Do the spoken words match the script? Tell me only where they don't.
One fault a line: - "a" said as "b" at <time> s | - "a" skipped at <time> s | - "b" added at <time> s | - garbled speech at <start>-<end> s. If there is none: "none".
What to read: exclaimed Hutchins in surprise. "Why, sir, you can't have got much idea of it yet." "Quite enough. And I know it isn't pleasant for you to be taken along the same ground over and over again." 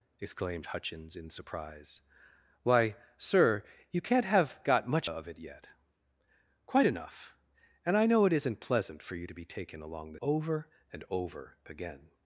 - "idea" skipped at 5.1 s
- "same ground" skipped at 10.2 s